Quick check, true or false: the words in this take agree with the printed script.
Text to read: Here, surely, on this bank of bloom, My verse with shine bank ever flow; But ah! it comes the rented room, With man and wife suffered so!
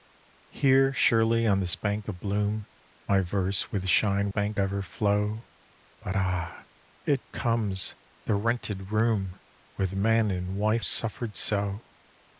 true